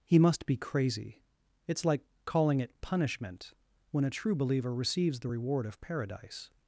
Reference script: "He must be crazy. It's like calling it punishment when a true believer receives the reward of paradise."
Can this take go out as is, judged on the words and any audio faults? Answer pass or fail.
pass